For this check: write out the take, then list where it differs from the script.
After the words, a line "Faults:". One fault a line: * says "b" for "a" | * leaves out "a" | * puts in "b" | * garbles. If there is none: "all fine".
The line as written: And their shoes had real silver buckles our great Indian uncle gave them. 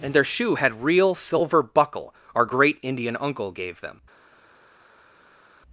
And their shoe had real silver buckle our great Indian uncle gave them.
Faults:
* says "shoe" for "shoes"
* says "buckle" for "buckles"